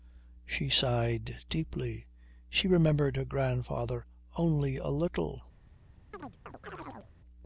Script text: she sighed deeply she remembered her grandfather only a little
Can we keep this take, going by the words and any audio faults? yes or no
no